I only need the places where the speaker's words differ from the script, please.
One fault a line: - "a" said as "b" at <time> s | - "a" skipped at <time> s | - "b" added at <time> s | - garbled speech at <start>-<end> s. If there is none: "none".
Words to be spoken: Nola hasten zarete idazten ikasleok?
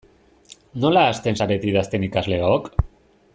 none